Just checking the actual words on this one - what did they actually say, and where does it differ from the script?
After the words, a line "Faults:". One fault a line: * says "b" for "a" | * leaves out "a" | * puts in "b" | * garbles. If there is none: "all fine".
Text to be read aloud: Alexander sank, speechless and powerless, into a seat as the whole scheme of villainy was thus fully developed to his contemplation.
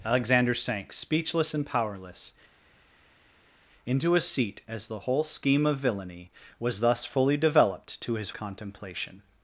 Alexander sank, speechless and powerless, into a seat as the whole scheme of villainy was thus fully developed to his contemplation.
Faults:
all fine